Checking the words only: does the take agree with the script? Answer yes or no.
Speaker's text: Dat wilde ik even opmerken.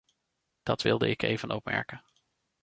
yes